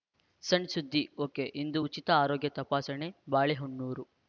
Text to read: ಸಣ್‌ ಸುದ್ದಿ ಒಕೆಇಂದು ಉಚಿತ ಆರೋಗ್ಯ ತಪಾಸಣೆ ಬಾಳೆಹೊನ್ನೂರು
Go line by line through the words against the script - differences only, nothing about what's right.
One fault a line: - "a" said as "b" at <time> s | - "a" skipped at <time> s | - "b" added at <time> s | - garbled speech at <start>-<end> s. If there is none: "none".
none